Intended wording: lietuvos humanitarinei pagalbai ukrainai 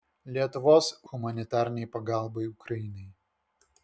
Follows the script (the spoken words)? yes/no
yes